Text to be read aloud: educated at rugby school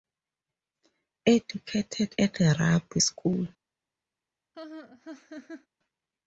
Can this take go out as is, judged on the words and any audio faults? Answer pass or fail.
fail